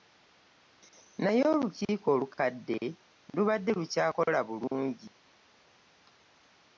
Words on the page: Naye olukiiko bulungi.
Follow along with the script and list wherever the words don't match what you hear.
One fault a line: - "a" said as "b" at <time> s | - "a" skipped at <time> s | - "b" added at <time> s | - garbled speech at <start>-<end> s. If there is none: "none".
- "olukadde lubadde lukyakola" added at 2.1 s